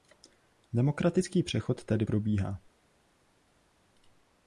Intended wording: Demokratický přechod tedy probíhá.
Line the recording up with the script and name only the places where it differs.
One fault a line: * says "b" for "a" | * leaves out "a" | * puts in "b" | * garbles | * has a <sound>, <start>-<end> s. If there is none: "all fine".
all fine